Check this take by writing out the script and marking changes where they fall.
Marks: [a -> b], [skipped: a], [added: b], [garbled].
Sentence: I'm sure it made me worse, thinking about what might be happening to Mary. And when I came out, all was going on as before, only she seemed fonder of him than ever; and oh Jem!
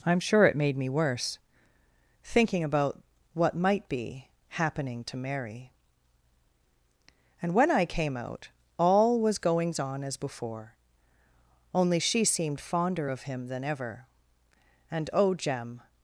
I'm sure it made me worse, thinking about what might be happening to Mary. And when I came out, all was [going -> goings] on as before, only she seemed fonder of him than ever; and oh Jem!